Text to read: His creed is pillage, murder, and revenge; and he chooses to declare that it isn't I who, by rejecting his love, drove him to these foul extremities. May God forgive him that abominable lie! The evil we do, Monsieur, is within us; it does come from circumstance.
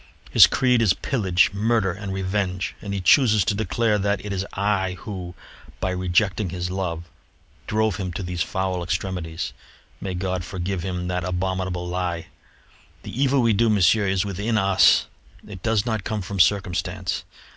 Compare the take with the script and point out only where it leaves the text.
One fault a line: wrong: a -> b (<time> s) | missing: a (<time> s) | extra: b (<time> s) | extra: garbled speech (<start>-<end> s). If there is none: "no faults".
wrong: isn't -> is (4.3 s)
extra: not (15.8 s)